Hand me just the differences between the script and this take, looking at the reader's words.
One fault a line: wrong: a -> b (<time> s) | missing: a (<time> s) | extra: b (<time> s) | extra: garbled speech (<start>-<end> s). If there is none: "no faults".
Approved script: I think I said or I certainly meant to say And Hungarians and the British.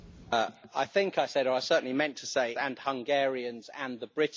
no faults